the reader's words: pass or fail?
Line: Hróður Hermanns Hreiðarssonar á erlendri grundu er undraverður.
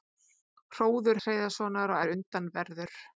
fail